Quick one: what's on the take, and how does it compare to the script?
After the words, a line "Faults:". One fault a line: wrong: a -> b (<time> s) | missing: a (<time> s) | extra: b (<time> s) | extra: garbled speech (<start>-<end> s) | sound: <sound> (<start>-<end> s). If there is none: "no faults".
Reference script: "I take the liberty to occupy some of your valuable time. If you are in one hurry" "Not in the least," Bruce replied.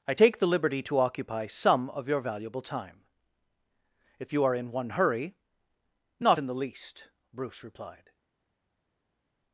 "I take the liberty to occupy some of your valuable time. If you are in one hurry" "Not in the least," Bruce replied.
Faults:
no faults